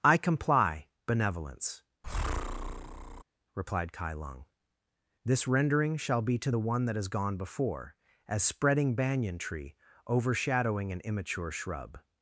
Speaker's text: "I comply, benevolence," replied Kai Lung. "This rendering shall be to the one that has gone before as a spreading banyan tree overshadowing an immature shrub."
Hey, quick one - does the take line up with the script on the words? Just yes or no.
no